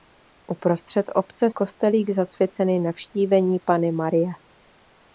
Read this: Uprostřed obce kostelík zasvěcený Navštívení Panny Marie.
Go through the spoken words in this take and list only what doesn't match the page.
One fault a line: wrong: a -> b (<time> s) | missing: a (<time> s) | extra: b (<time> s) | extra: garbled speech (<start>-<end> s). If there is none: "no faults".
no faults